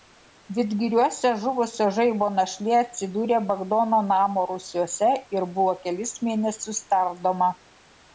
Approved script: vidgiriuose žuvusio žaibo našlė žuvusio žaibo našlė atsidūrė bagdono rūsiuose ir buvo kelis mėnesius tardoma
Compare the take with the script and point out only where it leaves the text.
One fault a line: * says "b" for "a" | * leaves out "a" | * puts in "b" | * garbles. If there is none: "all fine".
* leaves out "žuvusio žaibo našlė"
* puts in "namo"